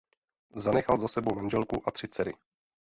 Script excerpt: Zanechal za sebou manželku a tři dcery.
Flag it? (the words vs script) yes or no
no